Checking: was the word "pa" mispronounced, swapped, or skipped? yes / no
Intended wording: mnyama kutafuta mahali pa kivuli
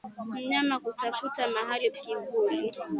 yes